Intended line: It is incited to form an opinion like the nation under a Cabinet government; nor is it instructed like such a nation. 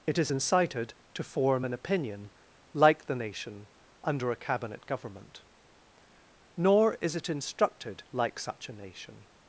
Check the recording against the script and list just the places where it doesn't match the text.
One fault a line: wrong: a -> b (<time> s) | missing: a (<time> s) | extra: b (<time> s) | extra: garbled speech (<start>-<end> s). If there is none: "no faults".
no faults